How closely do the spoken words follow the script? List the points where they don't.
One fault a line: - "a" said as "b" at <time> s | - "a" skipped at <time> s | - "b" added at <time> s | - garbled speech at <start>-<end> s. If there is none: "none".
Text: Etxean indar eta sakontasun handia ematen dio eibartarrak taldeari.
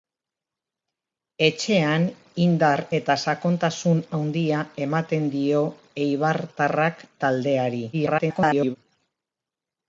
- garbled speech at 7.9-8.8 s